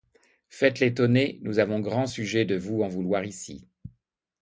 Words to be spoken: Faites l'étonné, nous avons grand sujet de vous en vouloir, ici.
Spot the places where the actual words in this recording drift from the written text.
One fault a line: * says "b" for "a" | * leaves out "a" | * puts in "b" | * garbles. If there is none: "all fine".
all fine